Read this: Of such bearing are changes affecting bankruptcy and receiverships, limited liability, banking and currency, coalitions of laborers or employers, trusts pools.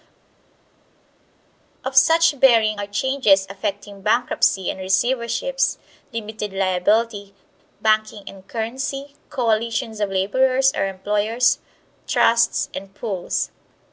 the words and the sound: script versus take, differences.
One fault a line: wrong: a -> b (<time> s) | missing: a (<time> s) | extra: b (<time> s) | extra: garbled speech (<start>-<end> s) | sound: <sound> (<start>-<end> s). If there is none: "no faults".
extra: and (12.7 s)